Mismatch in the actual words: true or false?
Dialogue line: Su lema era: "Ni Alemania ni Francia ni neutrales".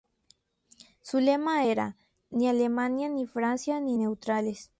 false